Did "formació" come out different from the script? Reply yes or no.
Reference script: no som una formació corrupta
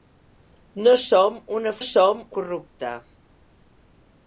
yes